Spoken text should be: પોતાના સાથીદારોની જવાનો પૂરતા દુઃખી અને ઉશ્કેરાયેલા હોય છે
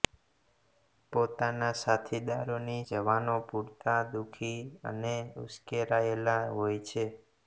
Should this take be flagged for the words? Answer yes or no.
no